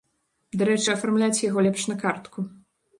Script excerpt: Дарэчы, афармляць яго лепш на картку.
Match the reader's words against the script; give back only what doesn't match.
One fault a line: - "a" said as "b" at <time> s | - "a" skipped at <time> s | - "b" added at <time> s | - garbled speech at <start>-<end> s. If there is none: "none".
none